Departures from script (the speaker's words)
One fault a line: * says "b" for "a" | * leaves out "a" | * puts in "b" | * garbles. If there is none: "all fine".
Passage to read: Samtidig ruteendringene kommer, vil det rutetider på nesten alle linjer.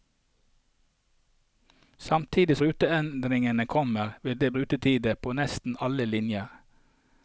all fine